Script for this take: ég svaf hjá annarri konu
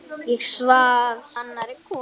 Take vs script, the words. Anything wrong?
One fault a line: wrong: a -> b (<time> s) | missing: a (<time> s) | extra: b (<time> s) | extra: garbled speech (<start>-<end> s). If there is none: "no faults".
missing: hjá (1.3 s)